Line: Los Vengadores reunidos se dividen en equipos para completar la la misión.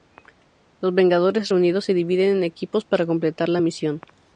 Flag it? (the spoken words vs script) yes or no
yes